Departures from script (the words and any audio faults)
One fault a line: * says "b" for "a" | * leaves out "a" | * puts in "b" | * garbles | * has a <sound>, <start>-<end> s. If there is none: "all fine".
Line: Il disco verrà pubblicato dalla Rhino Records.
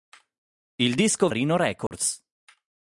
* leaves out "verrà pubblicato dalla"
* has a dropout, 1.9-1.9 s